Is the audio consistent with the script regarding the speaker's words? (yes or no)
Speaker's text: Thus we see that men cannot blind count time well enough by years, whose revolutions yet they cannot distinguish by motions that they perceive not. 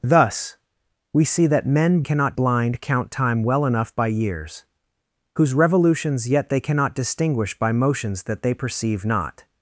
yes